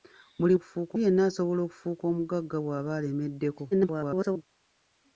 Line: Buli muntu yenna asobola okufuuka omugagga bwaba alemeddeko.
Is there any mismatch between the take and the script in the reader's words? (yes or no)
yes